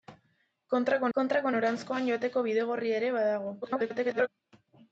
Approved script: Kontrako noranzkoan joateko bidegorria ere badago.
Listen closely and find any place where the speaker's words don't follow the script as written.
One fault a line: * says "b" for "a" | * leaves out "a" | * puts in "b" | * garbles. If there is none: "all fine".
* puts in "kontrako"
* garbles